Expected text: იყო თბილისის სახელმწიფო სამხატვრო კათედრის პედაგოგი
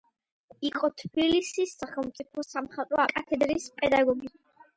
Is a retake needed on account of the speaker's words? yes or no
no